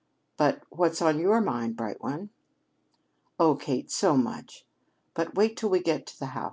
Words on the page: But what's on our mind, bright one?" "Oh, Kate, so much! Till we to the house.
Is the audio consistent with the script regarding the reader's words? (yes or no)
no